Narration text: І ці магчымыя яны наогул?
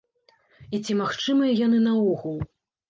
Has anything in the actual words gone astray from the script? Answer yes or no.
no